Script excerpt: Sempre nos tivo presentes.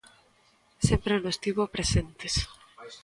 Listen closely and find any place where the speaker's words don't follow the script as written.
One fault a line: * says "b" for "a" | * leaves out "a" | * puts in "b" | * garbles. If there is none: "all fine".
all fine